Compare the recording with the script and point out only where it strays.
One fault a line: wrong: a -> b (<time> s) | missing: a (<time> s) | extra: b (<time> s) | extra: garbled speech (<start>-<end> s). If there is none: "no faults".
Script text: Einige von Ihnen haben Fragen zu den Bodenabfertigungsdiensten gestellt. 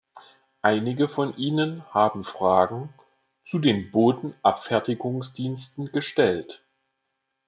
no faults